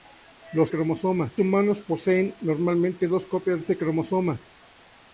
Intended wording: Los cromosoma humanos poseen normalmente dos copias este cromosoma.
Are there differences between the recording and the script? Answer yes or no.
no